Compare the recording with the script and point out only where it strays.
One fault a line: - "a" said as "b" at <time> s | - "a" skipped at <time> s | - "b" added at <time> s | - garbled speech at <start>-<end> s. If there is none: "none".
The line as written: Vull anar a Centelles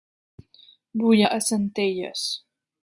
- "anar" skipped at 1.2 s